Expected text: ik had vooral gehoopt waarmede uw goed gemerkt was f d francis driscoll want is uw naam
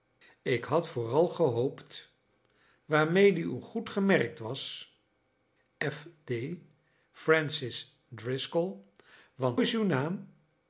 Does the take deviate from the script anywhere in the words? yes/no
no